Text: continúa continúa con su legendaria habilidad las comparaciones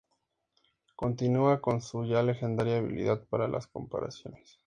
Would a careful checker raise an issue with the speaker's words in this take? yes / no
yes